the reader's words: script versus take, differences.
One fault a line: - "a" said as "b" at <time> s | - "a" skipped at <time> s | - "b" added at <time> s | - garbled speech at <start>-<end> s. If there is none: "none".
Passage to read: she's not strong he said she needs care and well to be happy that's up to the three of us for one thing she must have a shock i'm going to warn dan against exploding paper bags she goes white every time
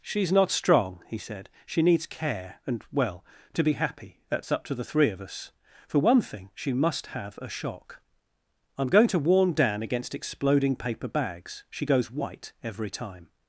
none